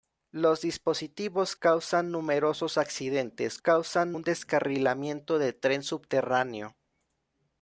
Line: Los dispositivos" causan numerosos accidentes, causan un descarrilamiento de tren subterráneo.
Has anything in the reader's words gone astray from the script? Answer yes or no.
no